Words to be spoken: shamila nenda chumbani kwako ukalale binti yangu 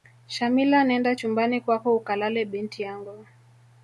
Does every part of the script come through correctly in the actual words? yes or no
yes